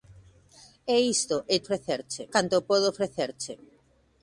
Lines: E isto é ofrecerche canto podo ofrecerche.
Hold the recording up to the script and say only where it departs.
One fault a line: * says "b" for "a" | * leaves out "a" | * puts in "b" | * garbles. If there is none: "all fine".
all fine